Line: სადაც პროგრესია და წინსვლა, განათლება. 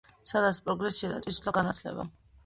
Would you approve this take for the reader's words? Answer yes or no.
yes